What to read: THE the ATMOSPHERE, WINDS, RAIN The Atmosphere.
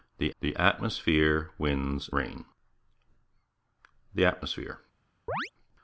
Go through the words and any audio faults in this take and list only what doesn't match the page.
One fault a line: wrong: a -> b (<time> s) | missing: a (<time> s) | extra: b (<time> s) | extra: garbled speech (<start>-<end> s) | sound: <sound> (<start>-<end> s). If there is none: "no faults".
sound: chirp (5.3-5.5 s)